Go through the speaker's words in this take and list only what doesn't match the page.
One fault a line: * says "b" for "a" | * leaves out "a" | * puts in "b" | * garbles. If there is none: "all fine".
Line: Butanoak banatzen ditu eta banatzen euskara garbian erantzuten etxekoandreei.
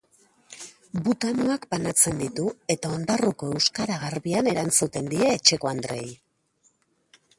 * says "ondarruko" for "banatzen"
* puts in "die"